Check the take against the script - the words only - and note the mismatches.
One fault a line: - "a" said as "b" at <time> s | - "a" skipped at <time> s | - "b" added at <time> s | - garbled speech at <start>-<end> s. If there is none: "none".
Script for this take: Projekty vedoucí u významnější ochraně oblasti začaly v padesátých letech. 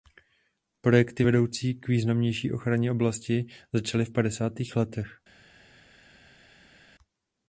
- "u" said as "k" at 1.7 s